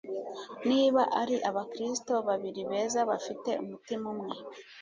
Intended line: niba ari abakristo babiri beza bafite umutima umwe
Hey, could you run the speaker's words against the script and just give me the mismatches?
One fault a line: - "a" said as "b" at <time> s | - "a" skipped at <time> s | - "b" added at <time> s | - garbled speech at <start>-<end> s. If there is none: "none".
none